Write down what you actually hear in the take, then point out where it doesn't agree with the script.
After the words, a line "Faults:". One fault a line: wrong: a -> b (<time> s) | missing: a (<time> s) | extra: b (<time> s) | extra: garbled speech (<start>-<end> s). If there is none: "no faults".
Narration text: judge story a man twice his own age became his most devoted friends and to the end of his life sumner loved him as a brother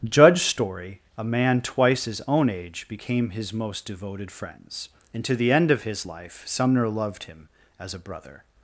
judge story a man twice his own age became his most devoted friends and to the end of his life sumner loved him as a brother
Faults:
no faults